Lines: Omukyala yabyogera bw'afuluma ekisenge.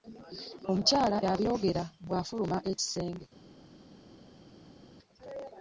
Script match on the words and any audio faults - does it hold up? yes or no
yes